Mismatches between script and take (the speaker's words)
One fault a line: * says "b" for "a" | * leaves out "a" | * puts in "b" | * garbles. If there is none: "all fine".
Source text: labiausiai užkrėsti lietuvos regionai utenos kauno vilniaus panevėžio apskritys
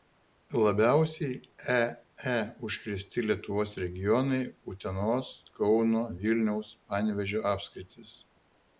* puts in "ee"